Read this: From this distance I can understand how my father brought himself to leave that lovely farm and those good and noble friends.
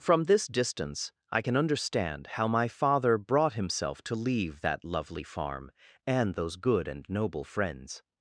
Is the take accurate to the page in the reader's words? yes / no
yes